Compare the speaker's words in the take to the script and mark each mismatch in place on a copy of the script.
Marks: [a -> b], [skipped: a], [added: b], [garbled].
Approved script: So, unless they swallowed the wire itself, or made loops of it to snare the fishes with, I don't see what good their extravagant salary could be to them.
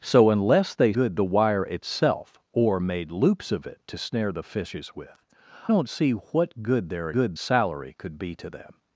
So, unless they [swallowed -> good] the wire itself, or made loops of it to snare the fishes with, [skipped: I] don't see what good their [extravagant -> good] salary could be to them.